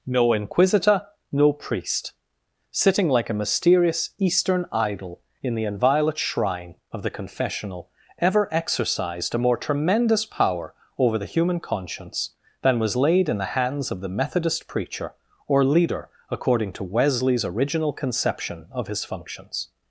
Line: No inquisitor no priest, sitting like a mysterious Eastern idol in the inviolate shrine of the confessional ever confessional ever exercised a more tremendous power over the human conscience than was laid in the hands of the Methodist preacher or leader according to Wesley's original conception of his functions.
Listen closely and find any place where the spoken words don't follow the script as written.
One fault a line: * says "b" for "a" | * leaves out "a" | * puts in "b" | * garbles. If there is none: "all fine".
* leaves out "confessional ever"